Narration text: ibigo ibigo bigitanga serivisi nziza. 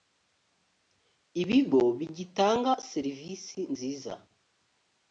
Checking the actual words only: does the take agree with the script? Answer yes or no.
no